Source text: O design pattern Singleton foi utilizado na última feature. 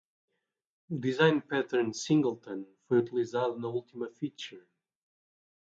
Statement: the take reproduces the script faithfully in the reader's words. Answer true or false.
true